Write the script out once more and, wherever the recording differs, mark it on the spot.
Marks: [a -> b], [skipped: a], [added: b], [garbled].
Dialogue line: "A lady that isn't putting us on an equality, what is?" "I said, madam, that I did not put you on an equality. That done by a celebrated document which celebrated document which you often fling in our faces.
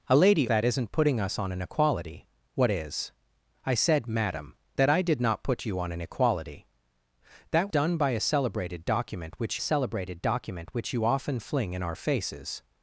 "A lady that isn't putting us on an equality, what is?" "I said, madam, that I did not put you on an equality. That done by a celebrated document which celebrated document which you often fling in our faces.